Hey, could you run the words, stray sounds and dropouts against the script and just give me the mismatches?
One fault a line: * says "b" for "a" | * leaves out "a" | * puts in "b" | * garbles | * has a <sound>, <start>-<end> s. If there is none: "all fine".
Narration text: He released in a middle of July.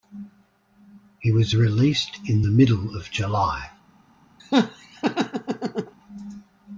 * puts in "was"
* says "the" for "a"
* has a laugh, 4.4-5.9 s